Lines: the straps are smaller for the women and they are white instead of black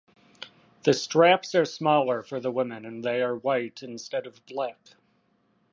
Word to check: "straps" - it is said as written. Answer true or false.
true